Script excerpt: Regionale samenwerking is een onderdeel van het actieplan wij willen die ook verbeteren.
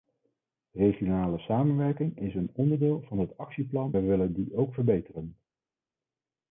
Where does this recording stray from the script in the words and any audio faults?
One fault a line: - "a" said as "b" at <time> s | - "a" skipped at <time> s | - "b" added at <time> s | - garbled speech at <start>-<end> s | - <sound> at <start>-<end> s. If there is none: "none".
none